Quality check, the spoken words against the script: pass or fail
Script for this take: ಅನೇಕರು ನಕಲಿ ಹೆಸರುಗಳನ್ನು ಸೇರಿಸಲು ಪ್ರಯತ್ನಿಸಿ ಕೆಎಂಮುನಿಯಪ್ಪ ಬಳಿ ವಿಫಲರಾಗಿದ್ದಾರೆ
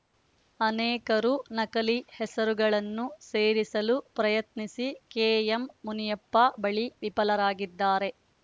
pass